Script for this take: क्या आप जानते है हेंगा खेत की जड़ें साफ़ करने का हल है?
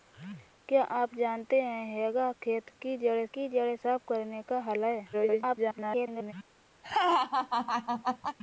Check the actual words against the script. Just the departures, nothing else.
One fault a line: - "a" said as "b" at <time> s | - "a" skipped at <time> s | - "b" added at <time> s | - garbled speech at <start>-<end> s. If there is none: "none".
- "की जड़ें" added at 3.3 s
- garbled speech at 5.1-6.3 s